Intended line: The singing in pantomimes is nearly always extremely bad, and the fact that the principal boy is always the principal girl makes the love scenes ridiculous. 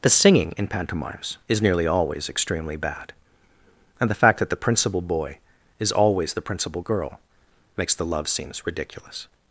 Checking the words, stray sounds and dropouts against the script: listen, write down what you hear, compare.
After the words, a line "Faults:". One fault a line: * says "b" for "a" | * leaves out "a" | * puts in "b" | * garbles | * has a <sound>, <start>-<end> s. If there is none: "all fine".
The singing in pantomimes is nearly always extremely bad, and the fact that the principal boy is always the principal girl makes the love scenes ridiculous.
Faults:
all fine